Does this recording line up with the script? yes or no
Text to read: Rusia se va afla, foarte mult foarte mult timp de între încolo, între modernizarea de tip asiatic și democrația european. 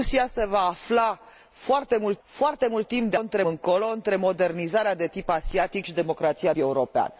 yes